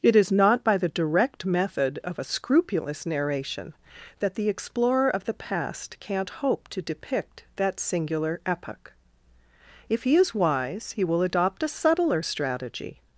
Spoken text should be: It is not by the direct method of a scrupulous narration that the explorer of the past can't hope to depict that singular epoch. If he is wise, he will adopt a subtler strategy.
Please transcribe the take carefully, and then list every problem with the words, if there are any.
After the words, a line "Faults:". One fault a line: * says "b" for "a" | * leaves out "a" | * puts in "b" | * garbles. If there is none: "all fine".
It is not by the direct method of a scrupulous narration that the explorer of the past can't hope to depict that singular epoch. If he is wise, he will adopt a subtler strategy.
Faults:
all fine